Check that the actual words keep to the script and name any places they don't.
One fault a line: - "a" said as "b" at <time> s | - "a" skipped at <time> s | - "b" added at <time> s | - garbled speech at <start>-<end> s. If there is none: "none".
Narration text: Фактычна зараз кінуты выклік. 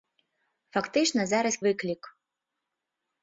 - "кінуты" skipped at 1.6 s